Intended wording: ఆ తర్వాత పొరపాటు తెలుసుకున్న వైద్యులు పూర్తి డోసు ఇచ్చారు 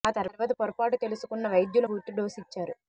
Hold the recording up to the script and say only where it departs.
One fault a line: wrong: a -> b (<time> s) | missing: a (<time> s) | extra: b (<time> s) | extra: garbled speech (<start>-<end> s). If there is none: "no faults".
no faults